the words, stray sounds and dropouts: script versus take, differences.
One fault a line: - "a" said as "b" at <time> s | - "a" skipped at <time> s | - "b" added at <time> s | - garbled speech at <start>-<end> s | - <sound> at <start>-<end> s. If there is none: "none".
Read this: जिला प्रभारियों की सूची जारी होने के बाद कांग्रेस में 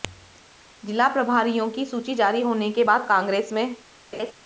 - laugh at 4.1-4.3 s